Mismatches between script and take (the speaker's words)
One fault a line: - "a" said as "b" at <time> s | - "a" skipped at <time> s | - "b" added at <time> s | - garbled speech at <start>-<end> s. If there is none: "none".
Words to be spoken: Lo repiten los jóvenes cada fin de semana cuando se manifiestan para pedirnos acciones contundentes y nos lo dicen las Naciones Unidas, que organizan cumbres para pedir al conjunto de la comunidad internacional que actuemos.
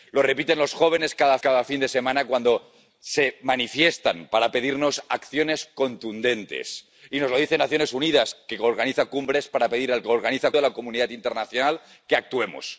- "cada" added at 1.4 s
- "conjunto" said as "organizan" at 10.0 s